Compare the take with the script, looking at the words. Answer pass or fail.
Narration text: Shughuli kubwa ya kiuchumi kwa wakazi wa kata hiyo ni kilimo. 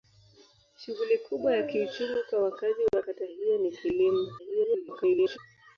fail